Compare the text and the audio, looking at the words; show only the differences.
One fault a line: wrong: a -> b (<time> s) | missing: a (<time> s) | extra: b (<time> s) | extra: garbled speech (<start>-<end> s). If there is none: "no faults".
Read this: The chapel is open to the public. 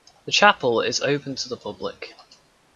no faults